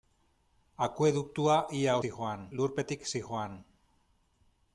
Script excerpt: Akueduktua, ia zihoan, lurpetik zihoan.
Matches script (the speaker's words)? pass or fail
pass